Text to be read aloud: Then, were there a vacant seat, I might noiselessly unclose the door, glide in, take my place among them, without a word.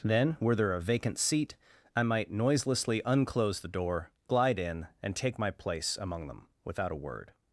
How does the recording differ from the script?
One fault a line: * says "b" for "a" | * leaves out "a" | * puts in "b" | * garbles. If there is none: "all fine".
* puts in "and"